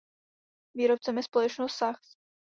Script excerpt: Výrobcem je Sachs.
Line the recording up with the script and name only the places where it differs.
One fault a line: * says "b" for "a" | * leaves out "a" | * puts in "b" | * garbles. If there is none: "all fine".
* puts in "společnost"